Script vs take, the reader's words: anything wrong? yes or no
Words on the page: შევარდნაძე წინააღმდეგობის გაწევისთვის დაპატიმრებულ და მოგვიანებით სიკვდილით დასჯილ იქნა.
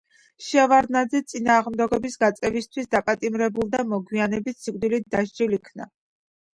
no